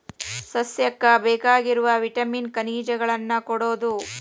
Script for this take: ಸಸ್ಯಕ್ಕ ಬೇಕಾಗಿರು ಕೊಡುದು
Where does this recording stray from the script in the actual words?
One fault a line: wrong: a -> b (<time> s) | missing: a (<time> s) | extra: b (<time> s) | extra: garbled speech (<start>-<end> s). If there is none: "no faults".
extra: ವಿಟಾಮಿನ್ ಖನಿಜಗಳನ್ನ (2.0 s)